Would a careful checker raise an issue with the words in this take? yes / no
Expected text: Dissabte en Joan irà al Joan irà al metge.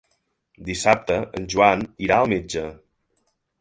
yes